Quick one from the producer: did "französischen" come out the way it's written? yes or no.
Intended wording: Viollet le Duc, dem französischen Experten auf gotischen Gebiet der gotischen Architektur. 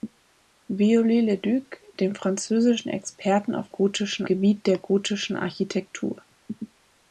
yes